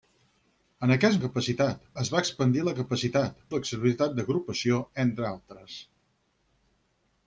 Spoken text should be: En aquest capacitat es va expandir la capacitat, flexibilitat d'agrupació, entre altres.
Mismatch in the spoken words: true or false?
false